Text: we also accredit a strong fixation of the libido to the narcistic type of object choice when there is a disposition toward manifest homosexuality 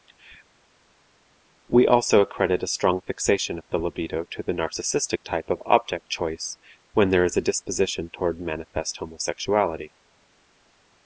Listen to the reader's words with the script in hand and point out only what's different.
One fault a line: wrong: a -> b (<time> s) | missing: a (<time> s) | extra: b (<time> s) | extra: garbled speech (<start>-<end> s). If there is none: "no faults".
no faults